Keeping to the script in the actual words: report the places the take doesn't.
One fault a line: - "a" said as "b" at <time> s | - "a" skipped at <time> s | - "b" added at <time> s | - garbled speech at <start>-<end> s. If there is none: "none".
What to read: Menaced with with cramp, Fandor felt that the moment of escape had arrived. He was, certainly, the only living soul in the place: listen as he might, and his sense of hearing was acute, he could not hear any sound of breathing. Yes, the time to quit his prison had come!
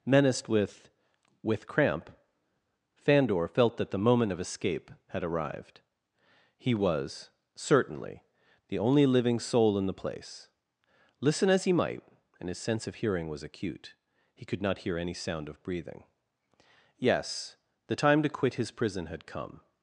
none